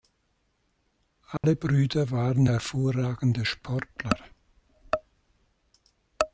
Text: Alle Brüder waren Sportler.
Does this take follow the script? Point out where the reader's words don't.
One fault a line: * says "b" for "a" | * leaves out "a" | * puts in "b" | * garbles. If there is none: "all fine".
* puts in "hervorragende"